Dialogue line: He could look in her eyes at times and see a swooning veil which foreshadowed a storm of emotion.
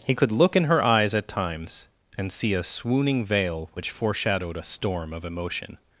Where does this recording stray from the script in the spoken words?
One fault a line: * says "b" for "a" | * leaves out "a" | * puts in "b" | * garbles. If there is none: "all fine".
all fine